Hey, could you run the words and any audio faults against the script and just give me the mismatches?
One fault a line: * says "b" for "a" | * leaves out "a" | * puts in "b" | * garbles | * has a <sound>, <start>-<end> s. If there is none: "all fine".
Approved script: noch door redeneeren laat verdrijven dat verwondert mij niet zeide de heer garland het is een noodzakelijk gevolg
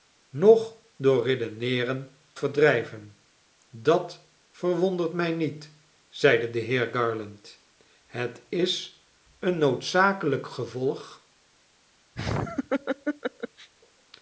* leaves out "laat"
* has a laugh, 12.2-13.7 s